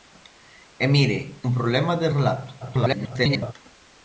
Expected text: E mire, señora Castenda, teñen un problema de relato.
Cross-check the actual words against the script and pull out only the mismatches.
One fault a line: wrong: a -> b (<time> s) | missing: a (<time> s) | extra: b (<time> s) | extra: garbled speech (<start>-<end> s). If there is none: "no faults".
missing: señora Castenda teñen (1.2 s)
extra: garbled speech (2.6-3.5 s)